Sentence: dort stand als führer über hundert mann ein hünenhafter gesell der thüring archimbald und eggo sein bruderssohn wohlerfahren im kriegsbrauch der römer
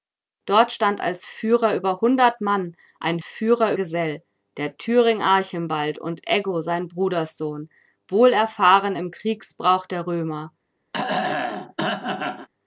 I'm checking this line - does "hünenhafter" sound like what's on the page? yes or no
no